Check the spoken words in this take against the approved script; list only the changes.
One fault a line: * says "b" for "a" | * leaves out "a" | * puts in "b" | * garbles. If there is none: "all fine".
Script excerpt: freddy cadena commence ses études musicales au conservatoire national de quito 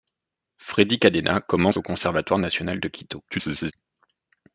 * leaves out "ses études musicales"
* garbles